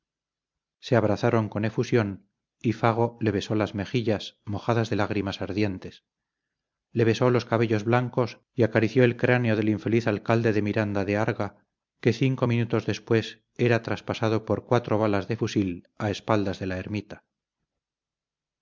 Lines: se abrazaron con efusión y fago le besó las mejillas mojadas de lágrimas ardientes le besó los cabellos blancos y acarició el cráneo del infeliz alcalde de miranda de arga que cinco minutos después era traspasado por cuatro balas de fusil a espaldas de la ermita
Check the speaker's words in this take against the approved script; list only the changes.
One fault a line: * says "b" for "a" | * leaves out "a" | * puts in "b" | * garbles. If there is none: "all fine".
all fine